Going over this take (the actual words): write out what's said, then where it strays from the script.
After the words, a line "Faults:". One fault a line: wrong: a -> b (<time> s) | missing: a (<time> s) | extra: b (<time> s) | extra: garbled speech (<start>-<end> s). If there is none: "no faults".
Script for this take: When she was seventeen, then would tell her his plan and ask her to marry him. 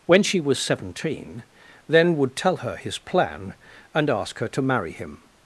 When she was seventeen, then would tell her his plan and ask her to marry him.
Faults:
no faults